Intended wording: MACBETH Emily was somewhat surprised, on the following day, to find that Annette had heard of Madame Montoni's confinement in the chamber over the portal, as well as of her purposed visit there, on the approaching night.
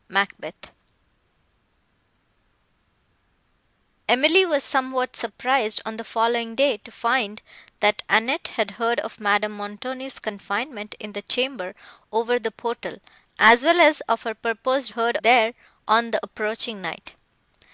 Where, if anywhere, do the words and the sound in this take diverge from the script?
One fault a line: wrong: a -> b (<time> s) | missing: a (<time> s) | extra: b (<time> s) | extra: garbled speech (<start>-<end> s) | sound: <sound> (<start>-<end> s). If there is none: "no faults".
wrong: visit -> heard (14.9 s)